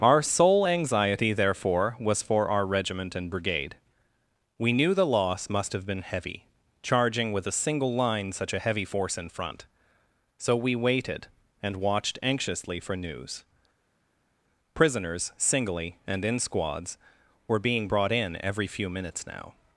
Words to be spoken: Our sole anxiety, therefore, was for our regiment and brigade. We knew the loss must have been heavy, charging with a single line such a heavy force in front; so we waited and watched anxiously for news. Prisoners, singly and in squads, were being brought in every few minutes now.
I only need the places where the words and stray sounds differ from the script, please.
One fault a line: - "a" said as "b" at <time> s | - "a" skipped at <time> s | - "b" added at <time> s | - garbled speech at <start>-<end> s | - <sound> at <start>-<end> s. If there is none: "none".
none